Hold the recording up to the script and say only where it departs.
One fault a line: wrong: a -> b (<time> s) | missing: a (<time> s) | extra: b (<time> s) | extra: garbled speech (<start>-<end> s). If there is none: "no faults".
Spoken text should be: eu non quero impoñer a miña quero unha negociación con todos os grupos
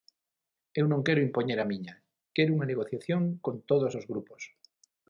no faults